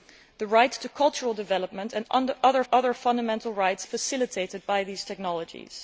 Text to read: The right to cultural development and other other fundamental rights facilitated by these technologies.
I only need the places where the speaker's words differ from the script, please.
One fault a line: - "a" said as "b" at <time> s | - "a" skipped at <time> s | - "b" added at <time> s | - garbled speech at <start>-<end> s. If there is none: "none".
none